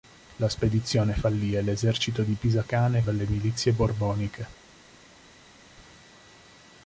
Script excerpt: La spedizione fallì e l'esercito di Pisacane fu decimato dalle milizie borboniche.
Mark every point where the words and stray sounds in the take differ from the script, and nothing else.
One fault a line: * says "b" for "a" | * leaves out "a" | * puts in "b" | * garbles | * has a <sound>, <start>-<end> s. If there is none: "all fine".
* leaves out "fu decimato"